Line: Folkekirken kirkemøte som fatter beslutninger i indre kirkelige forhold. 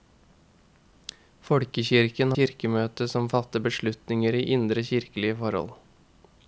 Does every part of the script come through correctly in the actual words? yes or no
yes